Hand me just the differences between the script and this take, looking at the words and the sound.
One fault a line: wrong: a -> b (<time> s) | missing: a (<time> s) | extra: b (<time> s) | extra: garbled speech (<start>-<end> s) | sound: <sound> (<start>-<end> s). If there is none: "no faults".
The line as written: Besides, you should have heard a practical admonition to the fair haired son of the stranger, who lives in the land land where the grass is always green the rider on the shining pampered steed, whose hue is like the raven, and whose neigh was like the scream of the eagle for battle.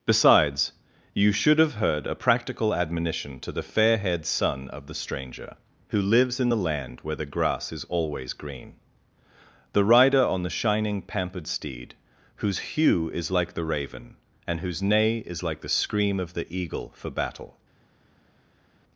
missing: land (7.0 s)
wrong: was -> is (15.3 s)